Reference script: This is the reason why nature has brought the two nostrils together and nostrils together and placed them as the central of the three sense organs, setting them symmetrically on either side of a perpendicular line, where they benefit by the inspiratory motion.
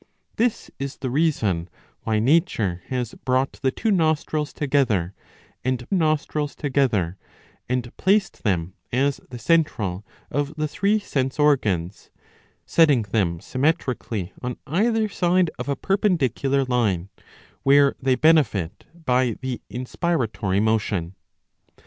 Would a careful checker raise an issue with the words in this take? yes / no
no